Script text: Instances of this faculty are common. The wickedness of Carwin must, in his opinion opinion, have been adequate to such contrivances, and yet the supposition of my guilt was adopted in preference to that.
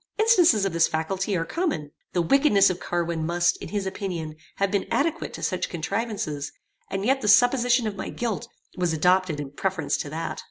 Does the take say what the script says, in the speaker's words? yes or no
no